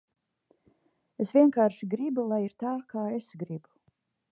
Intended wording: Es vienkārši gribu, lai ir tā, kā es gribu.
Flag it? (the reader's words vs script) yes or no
no